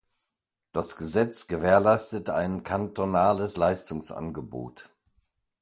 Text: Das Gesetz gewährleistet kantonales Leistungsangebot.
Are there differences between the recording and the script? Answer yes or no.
yes